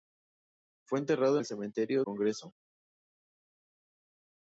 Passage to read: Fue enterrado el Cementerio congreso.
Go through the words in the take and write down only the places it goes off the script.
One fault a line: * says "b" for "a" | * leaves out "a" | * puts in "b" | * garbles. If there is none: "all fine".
all fine